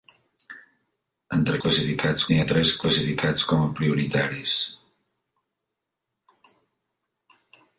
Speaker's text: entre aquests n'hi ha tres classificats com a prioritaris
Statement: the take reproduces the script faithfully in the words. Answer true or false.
false